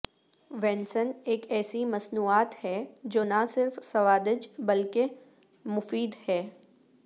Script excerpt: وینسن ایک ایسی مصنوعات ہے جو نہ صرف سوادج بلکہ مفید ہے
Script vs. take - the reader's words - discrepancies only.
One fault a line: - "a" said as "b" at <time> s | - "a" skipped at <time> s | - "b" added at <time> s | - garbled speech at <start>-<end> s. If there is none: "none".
none